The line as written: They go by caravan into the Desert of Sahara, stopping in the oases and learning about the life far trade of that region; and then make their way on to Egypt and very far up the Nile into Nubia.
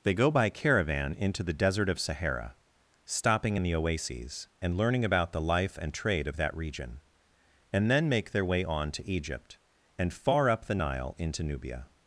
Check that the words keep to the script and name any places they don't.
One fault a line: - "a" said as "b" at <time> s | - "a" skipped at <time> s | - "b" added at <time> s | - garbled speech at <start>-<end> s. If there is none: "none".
- "far" said as "and" at 5.8 s
- "very" skipped at 10.1 s